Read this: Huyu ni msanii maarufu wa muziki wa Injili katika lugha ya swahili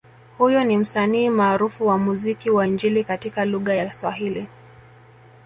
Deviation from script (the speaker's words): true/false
false